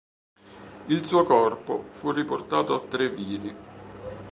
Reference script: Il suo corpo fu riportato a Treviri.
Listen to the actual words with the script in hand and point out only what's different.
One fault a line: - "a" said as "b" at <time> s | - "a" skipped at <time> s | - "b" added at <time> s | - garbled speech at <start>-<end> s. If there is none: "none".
none